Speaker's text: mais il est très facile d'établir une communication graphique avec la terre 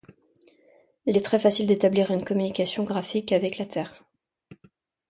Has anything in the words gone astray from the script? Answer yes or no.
yes